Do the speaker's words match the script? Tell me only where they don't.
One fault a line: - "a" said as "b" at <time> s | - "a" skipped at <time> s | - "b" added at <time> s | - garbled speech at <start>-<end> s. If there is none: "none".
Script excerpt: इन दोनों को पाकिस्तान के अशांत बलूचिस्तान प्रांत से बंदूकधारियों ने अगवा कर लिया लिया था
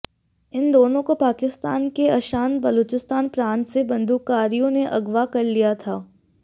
- "लिया" skipped at 5.8 s